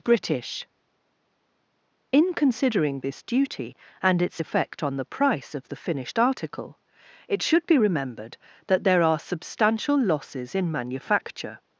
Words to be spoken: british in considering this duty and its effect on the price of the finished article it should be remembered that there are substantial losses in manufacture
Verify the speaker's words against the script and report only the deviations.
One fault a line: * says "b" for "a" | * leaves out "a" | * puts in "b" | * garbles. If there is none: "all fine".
all fine